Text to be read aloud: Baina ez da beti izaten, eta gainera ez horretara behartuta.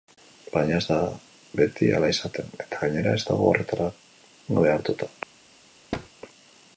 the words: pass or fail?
fail